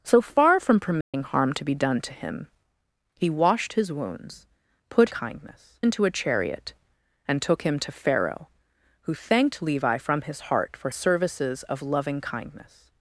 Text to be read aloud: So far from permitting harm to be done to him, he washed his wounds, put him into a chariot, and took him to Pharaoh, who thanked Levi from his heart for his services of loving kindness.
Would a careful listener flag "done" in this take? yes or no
no